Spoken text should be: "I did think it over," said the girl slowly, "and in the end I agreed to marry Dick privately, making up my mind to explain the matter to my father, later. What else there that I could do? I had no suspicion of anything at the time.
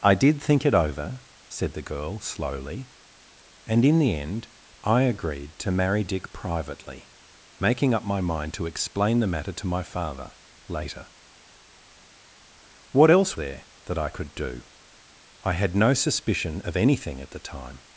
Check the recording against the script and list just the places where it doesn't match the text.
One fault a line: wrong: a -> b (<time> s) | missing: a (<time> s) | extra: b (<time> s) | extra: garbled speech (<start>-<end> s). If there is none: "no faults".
no faults